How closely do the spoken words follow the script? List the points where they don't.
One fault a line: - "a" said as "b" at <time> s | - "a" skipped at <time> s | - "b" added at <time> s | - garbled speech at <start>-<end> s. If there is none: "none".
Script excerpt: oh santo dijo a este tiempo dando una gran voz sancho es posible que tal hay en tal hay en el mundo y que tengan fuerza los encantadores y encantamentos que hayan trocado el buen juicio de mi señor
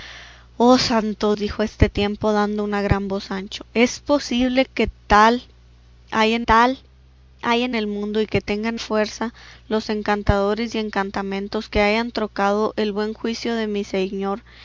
none